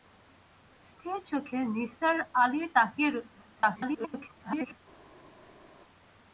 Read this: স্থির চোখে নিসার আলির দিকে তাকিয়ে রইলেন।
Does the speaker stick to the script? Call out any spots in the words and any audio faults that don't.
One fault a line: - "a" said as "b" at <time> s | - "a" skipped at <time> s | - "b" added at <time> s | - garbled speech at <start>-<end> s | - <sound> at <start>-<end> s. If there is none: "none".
- "দিকে" skipped at 2.7 s
- garbled speech at 3.6-4.8 s